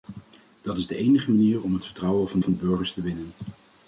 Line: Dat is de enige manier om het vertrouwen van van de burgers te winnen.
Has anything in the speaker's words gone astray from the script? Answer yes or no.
no